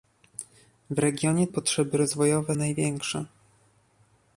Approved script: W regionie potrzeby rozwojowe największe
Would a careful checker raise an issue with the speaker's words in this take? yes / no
no